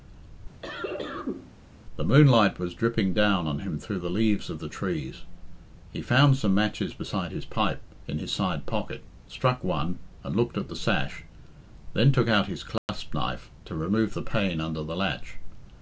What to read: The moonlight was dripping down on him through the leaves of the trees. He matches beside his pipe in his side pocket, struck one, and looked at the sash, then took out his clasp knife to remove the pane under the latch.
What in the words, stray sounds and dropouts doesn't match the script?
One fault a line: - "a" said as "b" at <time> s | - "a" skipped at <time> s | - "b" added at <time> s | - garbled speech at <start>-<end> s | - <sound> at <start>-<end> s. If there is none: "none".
- cough at 0.6-1.5 s
- "found some" added at 6.0 s
- dropout at 12.8-12.9 s